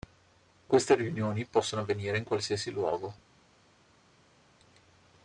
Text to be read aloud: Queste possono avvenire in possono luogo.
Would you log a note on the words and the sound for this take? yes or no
yes